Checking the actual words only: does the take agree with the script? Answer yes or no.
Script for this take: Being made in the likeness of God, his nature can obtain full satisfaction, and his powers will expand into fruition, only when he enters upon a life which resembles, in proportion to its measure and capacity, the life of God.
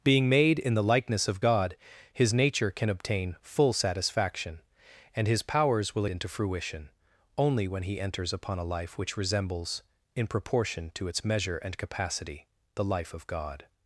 no